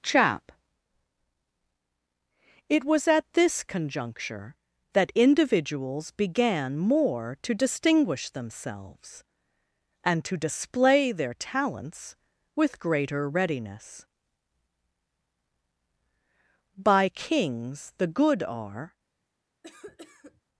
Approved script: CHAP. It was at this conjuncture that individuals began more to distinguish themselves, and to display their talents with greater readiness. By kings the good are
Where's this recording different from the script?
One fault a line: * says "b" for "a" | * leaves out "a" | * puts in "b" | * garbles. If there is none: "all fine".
all fine